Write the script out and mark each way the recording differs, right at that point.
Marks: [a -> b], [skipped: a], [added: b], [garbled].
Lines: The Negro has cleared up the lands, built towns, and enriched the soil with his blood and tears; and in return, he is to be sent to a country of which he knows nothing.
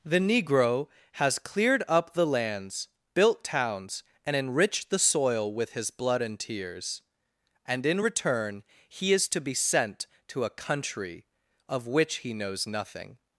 The Negro has cleared up the lands, built towns, and enriched the soil with his blood and tears; and in return, he is to be sent to a country of which he knows nothing.